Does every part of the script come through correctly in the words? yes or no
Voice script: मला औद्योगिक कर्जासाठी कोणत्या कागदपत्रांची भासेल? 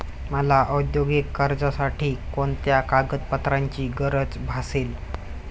no